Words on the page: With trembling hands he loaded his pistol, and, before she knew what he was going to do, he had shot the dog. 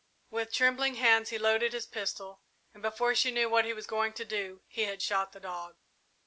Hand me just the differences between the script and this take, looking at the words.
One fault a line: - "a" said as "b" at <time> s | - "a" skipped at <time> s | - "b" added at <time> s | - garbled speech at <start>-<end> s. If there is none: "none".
none